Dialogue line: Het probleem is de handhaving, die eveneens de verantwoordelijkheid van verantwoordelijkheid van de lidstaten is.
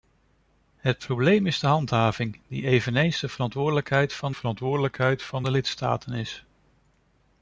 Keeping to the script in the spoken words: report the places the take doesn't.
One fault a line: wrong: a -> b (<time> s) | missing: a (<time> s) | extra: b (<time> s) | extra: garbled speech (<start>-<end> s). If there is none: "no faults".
no faults